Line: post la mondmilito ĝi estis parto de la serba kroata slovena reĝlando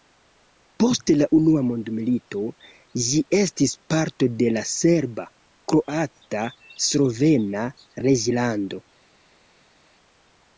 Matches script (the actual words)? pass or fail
fail